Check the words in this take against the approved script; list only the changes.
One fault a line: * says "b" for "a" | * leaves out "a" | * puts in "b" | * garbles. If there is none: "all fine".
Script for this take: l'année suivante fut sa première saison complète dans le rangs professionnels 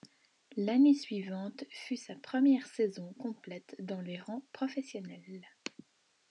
* says "les" for "le"